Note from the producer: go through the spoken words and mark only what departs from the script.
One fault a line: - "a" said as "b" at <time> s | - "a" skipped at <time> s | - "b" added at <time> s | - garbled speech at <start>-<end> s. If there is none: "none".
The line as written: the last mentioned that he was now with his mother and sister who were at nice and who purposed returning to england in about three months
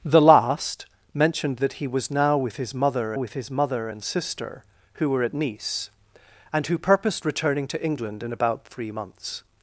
- "with his mother" added at 3.1 s